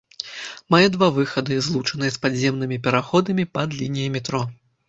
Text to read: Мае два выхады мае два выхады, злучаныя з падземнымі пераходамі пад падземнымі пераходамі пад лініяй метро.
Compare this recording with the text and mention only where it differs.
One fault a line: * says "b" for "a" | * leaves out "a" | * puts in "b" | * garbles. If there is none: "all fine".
* leaves out "мае два выхады"
* leaves out "падземнымі пераходамі пад"